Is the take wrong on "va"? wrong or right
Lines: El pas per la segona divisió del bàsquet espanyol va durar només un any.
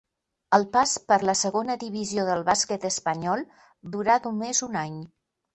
wrong